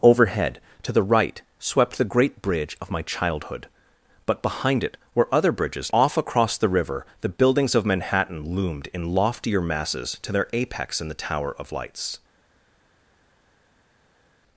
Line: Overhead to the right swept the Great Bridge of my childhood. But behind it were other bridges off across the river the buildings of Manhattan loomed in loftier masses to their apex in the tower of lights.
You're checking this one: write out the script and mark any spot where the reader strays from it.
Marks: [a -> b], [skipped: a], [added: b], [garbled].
Overhead to the right swept the Great Bridge of my childhood. But behind it were other bridges off across the river the buildings of Manhattan loomed in loftier masses to their apex in the tower of lights.